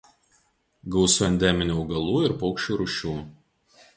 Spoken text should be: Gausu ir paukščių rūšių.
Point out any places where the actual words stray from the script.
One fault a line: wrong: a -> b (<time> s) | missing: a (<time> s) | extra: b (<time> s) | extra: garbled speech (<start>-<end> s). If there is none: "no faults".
extra: endeminių augalų (1.2 s)